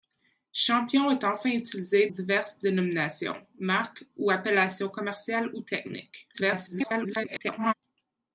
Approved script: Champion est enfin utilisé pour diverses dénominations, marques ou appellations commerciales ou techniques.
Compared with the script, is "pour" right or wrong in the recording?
wrong